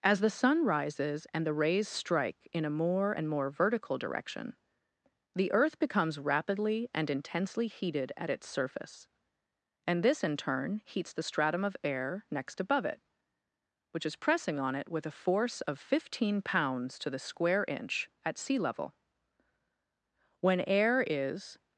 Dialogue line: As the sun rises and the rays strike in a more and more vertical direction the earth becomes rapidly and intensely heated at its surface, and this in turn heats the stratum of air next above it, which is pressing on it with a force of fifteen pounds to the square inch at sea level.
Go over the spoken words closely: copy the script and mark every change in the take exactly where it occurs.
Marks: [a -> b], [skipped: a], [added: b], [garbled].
As the sun rises and the rays strike in a more and more vertical direction the earth becomes rapidly and intensely heated at its surface, and this in turn heats the stratum of air next above it, which is pressing on it with a force of fifteen pounds to the square inch at sea level. [added: When air is]